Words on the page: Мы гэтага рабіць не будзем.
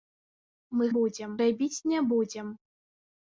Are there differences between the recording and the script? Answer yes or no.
yes